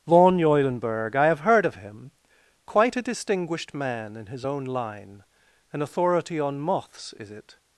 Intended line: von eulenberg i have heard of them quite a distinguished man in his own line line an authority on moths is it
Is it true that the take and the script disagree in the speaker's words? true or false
true